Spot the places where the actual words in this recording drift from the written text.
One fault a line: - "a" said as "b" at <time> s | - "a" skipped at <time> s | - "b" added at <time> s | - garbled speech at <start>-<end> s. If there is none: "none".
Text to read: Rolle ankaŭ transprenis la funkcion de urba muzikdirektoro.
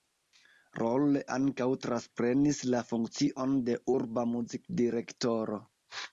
none